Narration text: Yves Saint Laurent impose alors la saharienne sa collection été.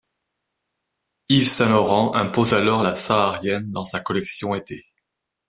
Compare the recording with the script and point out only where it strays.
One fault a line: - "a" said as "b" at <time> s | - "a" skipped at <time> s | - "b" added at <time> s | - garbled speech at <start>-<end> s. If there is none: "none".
- "dans" added at 3.7 s